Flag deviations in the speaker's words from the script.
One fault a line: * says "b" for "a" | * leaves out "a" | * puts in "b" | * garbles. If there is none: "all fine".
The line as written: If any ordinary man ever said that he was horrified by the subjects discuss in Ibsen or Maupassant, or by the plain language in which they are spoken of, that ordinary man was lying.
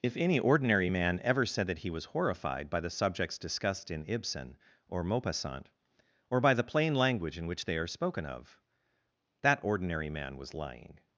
* says "discussed" for "discuss"